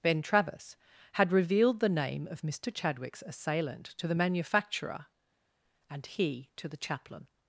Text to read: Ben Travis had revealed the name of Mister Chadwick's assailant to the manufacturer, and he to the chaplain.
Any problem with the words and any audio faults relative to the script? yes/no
no